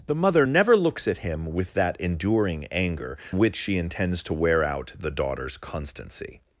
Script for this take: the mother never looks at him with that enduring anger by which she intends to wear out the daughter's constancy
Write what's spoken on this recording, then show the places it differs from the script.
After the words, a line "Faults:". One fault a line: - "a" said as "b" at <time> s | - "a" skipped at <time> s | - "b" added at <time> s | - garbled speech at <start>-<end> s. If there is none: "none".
the mother never looks at him with that enduring anger which she intends to wear out the daughter's constancy
Faults:
- "by" skipped at 3.2 s